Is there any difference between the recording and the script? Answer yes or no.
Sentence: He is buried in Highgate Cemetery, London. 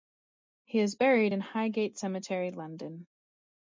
no